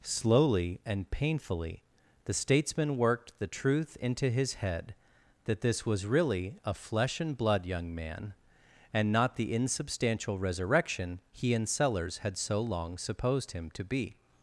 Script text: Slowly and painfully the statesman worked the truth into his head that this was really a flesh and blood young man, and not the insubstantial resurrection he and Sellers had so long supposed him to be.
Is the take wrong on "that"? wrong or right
right